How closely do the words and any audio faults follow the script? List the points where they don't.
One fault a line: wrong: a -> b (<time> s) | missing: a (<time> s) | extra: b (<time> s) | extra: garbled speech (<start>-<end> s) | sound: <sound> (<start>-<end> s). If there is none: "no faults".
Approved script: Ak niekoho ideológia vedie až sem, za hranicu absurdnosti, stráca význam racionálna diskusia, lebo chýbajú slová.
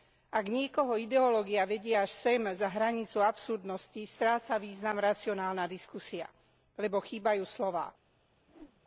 sound: whoosh (8.5-8.8 s)